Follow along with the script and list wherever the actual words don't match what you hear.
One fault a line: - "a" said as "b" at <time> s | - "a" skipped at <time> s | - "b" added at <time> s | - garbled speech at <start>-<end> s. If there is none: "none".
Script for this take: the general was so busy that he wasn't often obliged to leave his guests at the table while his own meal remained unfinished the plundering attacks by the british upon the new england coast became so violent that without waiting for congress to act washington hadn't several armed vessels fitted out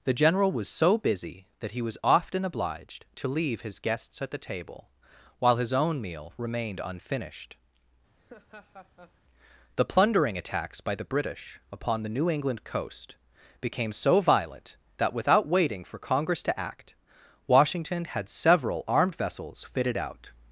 - "wasn't" said as "was" at 1.8 s
- "hadn't" said as "had" at 18.0 s